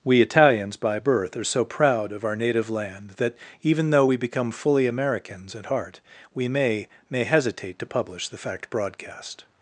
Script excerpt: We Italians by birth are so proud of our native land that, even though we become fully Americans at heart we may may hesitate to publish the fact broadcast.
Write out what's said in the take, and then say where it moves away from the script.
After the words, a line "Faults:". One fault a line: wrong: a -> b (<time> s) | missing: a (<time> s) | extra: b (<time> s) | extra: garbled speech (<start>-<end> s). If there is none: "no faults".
We Italians by birth are so proud of our native land that, even though we become fully Americans at heart we may may hesitate to publish the fact broadcast.
Faults:
no faults